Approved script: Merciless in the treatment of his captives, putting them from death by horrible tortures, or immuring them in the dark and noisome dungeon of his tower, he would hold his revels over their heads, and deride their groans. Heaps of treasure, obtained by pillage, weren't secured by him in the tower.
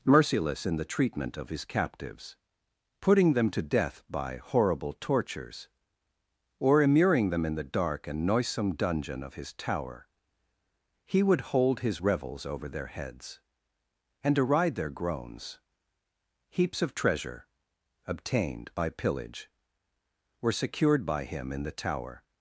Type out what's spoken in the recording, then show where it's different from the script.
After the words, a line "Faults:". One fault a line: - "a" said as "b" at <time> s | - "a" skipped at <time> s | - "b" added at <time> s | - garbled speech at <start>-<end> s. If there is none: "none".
Merciless in the treatment of his captives, putting them to death by horrible tortures, or immuring them in the dark and noisome dungeon of his tower, he would hold his revels over their heads, and deride their groans. Heaps of treasure, obtained by pillage, were secured by him in the tower.
Faults:
- "from" said as "to" at 3.5 s
- "weren't" said as "were" at 20.4 s